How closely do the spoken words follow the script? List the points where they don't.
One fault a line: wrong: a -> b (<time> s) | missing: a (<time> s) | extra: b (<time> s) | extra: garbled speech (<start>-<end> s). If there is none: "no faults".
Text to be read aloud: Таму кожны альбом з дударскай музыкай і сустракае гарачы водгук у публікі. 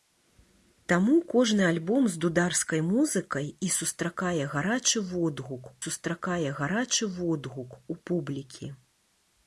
extra: сустракае гарачы водгук (5.8 s)